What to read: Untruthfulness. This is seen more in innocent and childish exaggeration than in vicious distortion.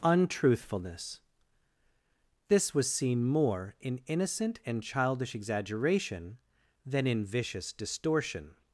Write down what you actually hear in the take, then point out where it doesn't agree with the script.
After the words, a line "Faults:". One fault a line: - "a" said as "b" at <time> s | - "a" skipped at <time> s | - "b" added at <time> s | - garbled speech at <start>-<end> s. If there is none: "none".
Untruthfulness. This was seen more in innocent and childish exaggeration than in vicious distortion.
Faults:
- "is" said as "was" at 2.7 s